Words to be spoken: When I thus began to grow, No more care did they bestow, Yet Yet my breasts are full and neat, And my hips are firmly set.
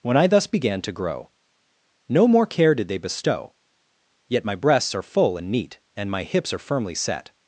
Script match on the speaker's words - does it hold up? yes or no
no